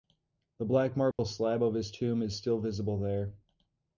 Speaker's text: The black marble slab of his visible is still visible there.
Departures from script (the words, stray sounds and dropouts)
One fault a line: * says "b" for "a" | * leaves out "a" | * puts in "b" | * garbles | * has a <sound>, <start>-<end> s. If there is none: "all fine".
* has a dropout, 1.1-1.2 s
* says "tomb" for "visible"